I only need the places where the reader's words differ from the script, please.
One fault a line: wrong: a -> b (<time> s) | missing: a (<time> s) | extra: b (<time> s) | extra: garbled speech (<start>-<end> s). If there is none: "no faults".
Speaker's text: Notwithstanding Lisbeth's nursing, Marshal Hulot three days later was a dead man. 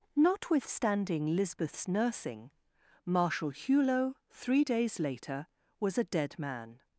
no faults